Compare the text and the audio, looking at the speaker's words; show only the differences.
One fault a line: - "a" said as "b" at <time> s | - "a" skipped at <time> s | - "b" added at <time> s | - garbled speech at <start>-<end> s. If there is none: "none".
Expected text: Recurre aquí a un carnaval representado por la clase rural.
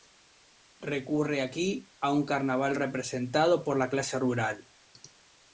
none